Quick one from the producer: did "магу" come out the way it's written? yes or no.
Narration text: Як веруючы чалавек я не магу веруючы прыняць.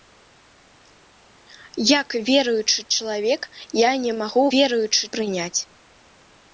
yes